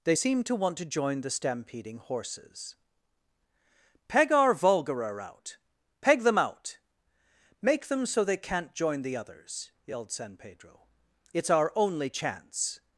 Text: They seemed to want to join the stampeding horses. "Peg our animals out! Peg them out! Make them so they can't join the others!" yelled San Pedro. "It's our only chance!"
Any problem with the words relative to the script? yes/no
yes